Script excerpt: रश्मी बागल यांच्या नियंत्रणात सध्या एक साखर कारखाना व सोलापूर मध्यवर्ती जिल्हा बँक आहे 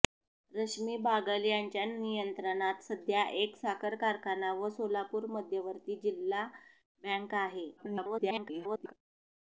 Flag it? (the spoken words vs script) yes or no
yes